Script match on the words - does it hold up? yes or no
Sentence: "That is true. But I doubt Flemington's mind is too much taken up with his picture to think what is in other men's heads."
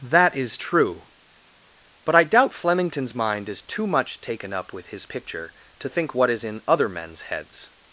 yes